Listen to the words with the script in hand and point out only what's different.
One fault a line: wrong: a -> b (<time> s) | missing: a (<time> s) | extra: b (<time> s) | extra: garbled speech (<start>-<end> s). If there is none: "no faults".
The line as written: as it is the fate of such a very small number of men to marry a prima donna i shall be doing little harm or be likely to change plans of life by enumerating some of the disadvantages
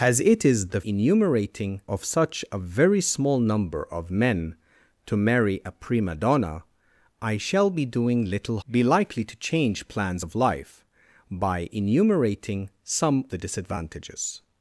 wrong: fate -> enumerating (0.8 s)
missing: harm or (8.6 s)
missing: of (13.3 s)